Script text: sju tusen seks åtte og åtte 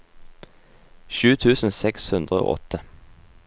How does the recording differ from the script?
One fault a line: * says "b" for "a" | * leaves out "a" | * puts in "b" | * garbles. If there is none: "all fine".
* says "hundre" for "åtte"